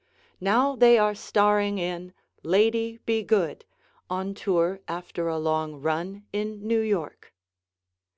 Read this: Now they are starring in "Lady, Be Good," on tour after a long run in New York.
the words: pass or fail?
pass